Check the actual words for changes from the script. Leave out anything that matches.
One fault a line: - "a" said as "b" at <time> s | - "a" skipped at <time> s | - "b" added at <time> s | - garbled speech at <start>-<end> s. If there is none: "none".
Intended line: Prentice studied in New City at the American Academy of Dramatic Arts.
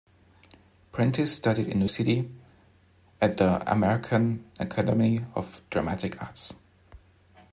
none